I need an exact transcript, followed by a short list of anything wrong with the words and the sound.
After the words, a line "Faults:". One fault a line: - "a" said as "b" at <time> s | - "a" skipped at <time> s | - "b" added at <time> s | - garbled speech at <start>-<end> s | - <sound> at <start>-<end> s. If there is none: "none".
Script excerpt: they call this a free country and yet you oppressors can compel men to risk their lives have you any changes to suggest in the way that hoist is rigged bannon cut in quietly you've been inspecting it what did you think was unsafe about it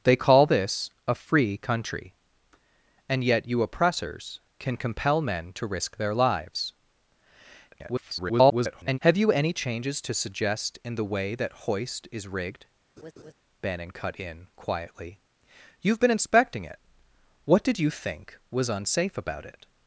they call this a free country and yet you oppressors can compel men to risk their lives [garbled] have you any changes to suggest in the way that hoist is rigged bannon cut in quietly you've been inspecting it what did you think was unsafe about it
Faults:
- garbled speech at 7.7-9.0 s
- laugh at 13.0-13.3 s